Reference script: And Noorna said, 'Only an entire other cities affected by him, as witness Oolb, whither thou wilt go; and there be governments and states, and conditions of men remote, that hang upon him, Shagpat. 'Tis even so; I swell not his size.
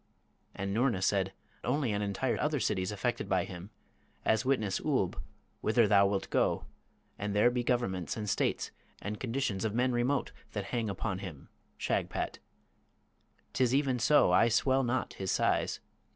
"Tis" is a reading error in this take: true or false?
false